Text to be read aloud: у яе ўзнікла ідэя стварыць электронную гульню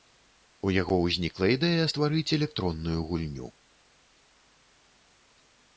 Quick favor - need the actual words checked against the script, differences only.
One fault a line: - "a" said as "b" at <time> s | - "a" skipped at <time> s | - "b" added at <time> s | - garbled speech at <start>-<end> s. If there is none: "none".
- "яе" said as "яго" at 0.8 s